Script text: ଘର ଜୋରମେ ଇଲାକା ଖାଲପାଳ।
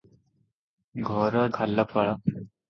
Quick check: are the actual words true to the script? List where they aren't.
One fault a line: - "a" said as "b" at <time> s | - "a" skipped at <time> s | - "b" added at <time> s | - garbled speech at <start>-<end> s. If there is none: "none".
- "ଜୋରମେ ଇଲାକା" skipped at 1.4 s